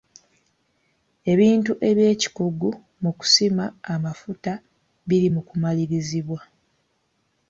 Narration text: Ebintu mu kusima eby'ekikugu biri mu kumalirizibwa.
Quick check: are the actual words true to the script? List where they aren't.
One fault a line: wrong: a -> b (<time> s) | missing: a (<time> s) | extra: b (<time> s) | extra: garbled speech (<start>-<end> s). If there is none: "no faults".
extra: eby'ekikugu (1.9 s)
wrong: eby'ekikugu -> amafuta (3.9 s)